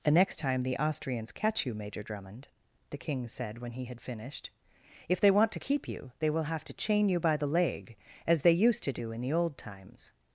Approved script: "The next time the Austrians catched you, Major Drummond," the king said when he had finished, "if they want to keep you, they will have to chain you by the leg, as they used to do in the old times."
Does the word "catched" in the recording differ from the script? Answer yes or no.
yes